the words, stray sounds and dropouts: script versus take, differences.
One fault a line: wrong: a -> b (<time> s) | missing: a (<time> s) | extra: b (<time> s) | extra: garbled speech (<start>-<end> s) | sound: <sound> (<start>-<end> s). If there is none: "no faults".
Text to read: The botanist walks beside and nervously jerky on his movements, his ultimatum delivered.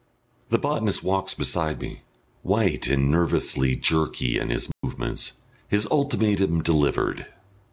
extra: me white (1.8 s)
wrong: on -> in (4.4 s)
sound: dropout (4.7-4.8 s)